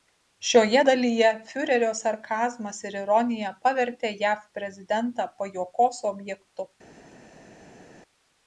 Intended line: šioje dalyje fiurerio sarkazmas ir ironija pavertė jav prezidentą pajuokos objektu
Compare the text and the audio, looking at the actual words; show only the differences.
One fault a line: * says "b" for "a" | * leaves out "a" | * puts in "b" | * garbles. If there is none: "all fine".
all fine